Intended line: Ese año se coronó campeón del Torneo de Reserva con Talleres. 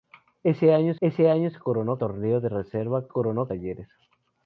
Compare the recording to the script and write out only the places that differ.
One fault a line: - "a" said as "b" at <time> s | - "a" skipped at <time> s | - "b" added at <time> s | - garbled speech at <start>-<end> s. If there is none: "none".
- "ese año" added at 1.0 s
- "campeón del" skipped at 2.0 s
- "con" said as "coronó" at 3.1 s